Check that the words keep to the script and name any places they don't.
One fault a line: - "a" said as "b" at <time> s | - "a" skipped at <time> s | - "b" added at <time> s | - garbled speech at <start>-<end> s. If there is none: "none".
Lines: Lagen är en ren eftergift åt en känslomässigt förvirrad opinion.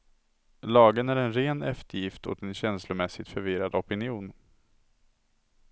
none